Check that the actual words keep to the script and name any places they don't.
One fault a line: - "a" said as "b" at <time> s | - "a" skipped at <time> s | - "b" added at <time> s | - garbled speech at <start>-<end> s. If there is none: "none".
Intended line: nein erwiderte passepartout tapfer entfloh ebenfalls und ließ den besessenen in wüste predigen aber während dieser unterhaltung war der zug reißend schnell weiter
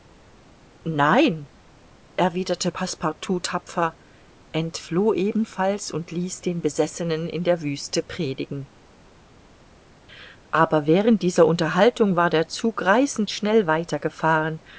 - "der" added at 7.4 s